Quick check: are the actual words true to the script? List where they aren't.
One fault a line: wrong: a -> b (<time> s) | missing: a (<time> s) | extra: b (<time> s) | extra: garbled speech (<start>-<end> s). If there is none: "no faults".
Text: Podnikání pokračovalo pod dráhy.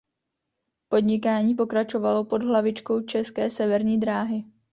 extra: hlavičkou České severní (2.4 s)